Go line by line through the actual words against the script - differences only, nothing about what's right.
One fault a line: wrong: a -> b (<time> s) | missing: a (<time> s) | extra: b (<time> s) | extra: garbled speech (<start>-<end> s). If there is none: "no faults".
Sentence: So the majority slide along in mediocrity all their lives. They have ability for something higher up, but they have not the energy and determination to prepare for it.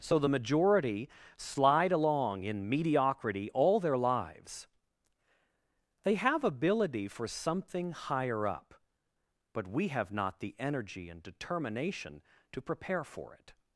wrong: they -> we (9.7 s)